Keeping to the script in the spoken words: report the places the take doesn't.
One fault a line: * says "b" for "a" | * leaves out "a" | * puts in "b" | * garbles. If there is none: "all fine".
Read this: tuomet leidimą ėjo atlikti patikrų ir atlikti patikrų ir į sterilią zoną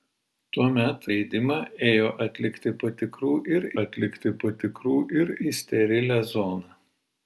all fine